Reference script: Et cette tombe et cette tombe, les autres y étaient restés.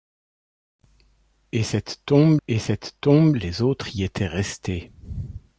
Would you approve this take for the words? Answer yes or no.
yes